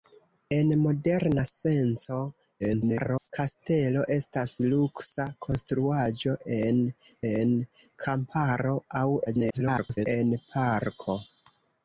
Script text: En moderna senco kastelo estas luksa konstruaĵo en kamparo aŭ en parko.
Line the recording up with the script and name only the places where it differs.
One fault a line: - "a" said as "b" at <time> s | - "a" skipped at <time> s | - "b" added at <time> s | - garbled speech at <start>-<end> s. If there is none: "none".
- garbled speech at 2.6-3.3 s
- "en" added at 7.3 s
- garbled speech at 9.3-10.1 s